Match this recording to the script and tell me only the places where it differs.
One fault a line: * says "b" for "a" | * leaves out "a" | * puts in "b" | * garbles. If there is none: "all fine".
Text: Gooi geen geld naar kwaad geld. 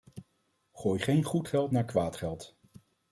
* puts in "goed"